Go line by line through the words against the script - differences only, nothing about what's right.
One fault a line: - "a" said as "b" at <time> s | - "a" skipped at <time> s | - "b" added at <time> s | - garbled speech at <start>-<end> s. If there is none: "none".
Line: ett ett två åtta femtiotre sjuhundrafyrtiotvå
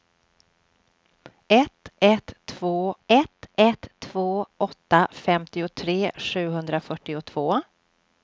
- "ett ett två" added at 3.1 s